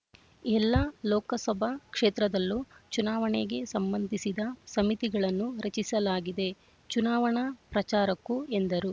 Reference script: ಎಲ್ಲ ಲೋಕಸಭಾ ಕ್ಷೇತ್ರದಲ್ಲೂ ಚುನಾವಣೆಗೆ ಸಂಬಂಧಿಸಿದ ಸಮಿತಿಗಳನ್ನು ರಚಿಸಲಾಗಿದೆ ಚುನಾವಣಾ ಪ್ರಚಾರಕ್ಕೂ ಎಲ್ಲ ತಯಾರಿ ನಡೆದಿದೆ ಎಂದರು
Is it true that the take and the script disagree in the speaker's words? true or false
true